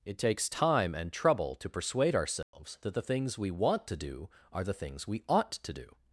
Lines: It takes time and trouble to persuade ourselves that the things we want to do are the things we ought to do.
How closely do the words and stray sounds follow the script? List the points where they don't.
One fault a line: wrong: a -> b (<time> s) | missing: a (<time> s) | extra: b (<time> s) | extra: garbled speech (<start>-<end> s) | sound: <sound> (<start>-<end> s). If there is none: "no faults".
sound: dropout (2.4-2.5 s)